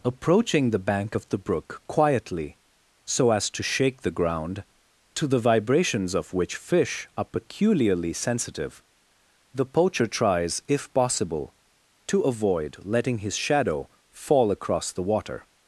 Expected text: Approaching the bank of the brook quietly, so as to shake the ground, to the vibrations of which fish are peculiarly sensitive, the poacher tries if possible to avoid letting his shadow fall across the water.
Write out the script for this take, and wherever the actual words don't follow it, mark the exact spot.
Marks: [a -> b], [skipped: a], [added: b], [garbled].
Approaching the bank of the brook quietly, so as to shake the ground, to the vibrations of which fish are peculiarly sensitive, the poacher tries if possible to avoid letting his shadow fall across the water.